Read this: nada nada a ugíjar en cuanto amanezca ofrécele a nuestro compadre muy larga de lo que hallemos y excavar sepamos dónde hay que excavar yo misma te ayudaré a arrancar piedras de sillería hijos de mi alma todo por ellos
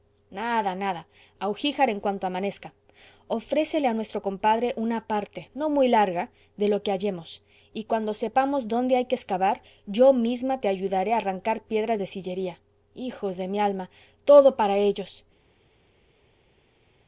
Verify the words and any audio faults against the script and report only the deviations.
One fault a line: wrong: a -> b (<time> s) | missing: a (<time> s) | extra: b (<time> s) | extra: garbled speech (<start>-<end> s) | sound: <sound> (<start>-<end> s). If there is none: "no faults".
extra: una parte no (4.8 s)
wrong: excavar -> cuando (7.8 s)
wrong: por -> para (14.6 s)